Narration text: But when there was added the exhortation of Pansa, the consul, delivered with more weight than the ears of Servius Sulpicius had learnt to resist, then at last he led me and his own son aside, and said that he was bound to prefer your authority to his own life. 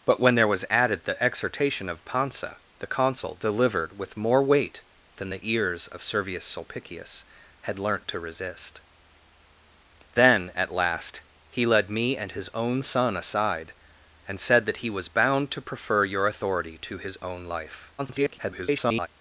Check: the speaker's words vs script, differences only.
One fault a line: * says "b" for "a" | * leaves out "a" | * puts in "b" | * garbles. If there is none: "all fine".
* garbles